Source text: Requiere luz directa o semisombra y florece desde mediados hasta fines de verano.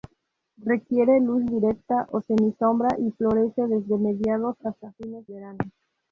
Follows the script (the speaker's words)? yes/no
no